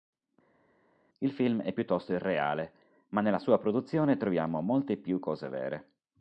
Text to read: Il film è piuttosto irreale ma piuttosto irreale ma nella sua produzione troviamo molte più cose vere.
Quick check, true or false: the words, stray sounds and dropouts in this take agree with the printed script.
false